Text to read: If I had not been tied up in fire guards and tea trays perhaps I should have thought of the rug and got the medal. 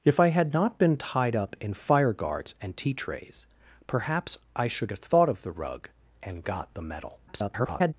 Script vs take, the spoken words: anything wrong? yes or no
yes